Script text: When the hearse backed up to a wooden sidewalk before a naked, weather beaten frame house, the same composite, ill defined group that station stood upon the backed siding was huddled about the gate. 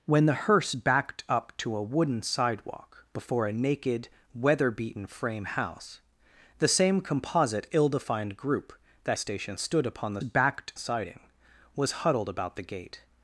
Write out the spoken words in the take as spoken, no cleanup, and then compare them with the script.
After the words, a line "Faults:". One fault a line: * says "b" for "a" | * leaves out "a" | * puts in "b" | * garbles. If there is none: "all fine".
When the hearse backed up to a wooden sidewalk before a naked, weather beaten frame house, the same composite, ill defined group that station stood upon the backed siding was huddled about the gate.
Faults:
all fine